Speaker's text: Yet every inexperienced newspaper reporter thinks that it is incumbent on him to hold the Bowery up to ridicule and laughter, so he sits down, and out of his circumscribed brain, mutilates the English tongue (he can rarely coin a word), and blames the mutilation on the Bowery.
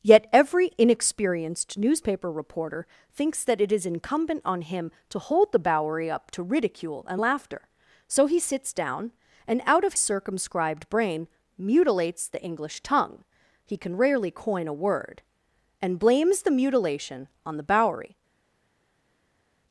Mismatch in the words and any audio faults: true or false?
true